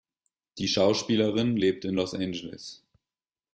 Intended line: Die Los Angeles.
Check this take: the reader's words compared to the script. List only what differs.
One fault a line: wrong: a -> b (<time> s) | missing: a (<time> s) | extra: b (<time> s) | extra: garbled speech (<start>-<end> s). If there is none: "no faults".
extra: Schauspielerin lebt in (0.7 s)